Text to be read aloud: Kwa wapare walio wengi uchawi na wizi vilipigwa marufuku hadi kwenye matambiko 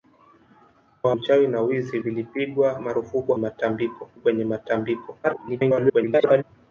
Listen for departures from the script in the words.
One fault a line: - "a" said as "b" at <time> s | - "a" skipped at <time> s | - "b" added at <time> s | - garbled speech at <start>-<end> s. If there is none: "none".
- "wapare walio wengi" skipped at 1.1 s
- "hadi" said as "matambiko" at 3.4 s
- garbled speech at 5.2-6.4 s